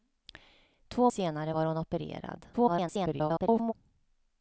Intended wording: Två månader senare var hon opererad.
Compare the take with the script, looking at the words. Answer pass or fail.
fail